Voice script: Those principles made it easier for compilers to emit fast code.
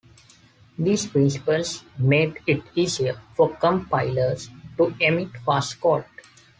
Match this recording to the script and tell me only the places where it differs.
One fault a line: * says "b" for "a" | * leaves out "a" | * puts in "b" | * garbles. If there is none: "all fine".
* says "These" for "Those"